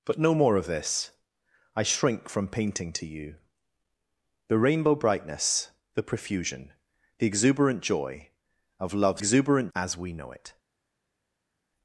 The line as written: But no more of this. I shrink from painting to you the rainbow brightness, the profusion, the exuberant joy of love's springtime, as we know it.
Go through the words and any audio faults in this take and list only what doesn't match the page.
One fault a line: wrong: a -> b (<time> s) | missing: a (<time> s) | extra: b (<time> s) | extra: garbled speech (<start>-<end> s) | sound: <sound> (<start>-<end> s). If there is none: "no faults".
wrong: springtime -> exuberant (9.2 s)